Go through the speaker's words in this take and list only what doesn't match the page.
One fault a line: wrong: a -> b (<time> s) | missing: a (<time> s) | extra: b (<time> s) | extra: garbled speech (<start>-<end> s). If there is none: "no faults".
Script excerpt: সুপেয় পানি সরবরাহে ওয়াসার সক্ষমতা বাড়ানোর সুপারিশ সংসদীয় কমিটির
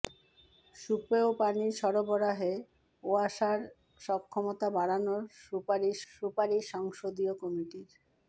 extra: সুপারিশ (6.1 s)